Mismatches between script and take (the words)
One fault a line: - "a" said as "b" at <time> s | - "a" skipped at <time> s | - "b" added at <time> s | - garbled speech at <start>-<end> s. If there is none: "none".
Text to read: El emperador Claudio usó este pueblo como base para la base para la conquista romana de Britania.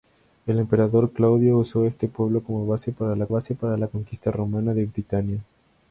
none